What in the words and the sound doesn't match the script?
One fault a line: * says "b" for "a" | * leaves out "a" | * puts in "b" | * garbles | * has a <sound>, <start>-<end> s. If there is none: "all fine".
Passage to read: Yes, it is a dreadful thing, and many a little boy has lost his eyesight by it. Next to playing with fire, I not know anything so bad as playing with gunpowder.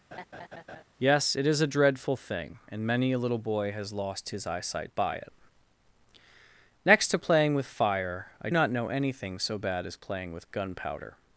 * has a laugh, 0.1-0.8 s